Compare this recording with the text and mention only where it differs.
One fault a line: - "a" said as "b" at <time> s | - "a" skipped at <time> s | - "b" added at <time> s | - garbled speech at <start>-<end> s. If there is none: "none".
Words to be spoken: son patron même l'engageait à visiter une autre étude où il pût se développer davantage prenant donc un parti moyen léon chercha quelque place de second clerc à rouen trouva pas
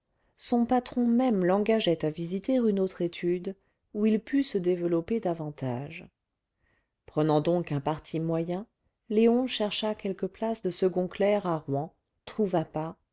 none